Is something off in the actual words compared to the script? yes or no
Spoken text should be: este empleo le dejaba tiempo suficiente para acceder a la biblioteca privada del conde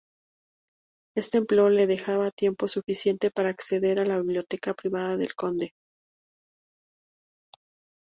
no